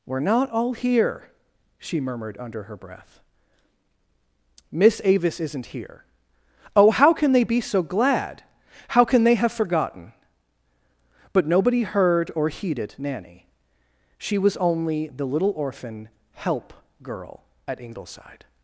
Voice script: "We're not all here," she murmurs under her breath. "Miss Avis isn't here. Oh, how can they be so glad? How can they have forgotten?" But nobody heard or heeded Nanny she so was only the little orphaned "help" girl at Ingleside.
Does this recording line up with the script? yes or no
no